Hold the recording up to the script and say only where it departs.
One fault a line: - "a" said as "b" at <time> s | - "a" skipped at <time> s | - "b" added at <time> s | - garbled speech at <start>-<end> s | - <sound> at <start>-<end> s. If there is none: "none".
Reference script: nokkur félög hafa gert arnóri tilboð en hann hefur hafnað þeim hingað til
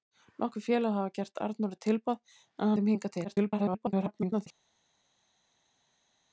- "hann hefur hafnað" skipped at 2.7 s
- garbled speech at 3.2-4.5 s